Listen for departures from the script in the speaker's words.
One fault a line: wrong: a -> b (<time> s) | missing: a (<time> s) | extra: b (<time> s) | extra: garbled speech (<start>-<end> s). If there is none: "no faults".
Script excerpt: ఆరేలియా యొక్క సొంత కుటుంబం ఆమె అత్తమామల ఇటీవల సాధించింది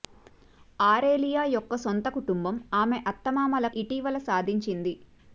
no faults